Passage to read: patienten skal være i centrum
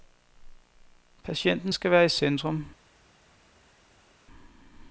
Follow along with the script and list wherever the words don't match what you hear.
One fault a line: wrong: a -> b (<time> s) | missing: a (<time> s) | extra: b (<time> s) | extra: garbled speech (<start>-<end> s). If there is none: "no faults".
no faults